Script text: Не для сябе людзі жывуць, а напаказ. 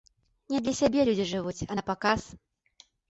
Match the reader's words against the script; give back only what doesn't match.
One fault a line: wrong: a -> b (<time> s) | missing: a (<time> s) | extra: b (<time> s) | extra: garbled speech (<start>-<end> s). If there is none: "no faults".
no faults